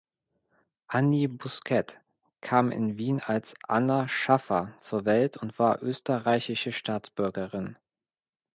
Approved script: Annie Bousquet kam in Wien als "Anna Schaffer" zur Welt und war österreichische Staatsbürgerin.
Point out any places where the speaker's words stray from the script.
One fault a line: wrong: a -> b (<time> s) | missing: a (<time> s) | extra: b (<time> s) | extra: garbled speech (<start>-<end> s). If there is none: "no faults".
no faults